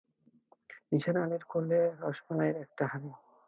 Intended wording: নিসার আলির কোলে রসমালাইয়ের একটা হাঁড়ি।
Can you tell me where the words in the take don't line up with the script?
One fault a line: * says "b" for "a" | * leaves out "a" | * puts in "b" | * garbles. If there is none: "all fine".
all fine